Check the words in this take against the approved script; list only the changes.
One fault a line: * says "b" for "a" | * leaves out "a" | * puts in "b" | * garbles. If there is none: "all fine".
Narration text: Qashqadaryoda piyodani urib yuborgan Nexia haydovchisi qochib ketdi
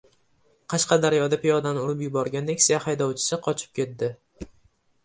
all fine